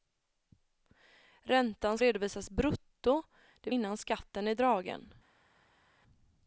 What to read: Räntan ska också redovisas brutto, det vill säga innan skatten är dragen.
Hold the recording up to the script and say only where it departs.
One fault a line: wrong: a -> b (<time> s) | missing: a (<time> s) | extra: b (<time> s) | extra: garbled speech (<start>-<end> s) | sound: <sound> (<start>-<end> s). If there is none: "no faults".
missing: ska också (2.0 s)
missing: vill säga (3.7 s)